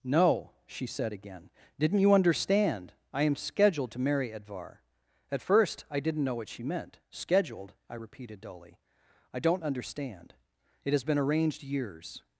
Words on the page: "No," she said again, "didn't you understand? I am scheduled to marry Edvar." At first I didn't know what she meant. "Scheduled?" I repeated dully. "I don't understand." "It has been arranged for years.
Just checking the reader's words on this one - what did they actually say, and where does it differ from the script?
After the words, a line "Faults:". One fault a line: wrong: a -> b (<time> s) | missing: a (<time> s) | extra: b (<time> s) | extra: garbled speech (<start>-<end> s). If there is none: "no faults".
"No," she said again, "didn't you understand? I am scheduled to marry Edvar." At first I didn't know what she meant. "Scheduled?" I repeated dully. "I don't understand." "It has been arranged years.
Faults:
missing: for (11.6 s)